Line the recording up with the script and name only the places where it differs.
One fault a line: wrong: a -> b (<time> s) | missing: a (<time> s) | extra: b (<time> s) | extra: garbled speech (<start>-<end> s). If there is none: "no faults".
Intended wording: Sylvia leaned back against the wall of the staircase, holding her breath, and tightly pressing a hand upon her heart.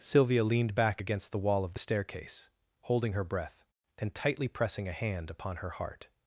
no faults